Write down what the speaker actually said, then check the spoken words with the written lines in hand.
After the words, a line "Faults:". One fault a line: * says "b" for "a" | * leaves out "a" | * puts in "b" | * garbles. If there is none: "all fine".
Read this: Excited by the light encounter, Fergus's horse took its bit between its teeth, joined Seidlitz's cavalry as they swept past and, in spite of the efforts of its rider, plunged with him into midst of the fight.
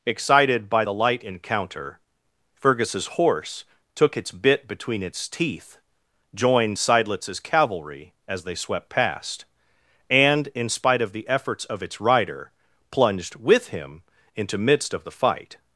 Excited by the light encounter, Fergus's horse took its bit between its teeth, joined Seidlitz's cavalry as they swept past and, in spite of the efforts of its rider, plunged with him into midst of the fight.
Faults:
all fine